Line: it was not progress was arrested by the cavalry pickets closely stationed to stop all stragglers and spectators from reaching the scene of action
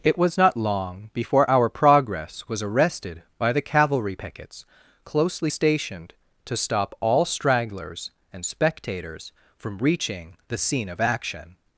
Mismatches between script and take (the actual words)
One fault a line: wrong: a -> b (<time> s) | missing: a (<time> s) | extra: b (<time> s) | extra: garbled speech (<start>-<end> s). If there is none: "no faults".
extra: long before our (0.6 s)